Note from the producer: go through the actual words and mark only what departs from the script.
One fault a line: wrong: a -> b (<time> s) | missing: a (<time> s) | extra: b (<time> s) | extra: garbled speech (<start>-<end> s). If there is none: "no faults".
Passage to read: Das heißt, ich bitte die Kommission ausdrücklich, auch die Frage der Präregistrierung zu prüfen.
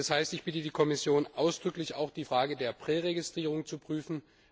no faults